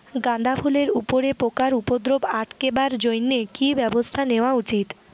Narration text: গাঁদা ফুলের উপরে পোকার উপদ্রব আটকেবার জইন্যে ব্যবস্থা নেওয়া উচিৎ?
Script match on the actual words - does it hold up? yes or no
no